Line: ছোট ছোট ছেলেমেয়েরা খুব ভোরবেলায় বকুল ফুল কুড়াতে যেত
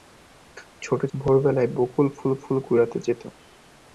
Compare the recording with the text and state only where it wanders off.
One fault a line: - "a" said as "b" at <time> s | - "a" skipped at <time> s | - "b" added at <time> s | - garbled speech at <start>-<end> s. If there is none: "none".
- "ছোট ছেলেমেয়েরা খুব" skipped at 1.0 s
- "ফুল" added at 2.4 s